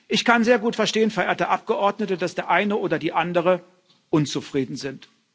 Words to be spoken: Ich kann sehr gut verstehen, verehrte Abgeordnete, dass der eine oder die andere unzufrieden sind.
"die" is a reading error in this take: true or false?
false